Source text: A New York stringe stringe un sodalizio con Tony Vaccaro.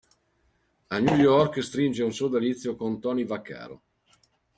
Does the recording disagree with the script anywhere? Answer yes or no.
yes